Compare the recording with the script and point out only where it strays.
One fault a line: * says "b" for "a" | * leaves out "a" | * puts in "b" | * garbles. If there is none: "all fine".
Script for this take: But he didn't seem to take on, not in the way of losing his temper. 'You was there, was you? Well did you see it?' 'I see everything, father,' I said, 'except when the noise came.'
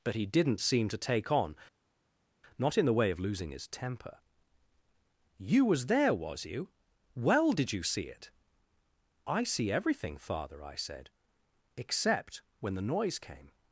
all fine